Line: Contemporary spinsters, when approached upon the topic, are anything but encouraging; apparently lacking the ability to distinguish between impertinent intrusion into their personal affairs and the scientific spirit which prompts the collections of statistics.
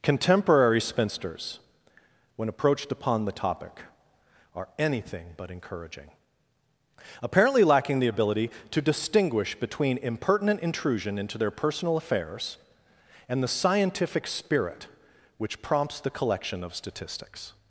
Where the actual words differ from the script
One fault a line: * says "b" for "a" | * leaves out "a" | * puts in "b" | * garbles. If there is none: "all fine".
* says "collection" for "collections"